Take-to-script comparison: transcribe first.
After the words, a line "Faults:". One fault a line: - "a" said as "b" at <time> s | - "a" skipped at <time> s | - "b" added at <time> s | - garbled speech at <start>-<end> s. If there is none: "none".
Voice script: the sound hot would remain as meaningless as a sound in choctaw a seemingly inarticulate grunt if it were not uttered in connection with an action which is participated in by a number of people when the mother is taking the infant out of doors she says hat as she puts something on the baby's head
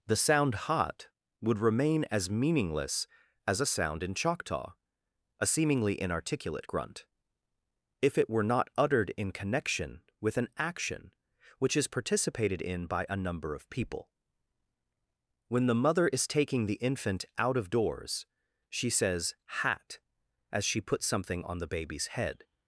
the sound hot would remain as meaningless as a sound in choctaw a seemingly inarticulate grunt if it were not uttered in connection with an action which is participated in by a number of people when the mother is taking the infant out of doors she says hat as she puts something on the baby's head
Faults:
none